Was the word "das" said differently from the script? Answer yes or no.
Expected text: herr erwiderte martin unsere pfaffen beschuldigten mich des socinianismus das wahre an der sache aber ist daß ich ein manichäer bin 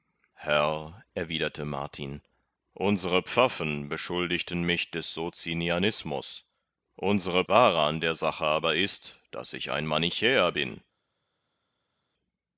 yes